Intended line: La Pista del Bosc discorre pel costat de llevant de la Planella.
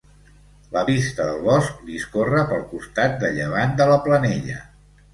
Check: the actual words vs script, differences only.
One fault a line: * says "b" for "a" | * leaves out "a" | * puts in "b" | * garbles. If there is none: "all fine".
all fine